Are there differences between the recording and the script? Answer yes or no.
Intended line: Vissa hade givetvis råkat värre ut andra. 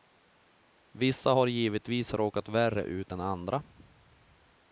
yes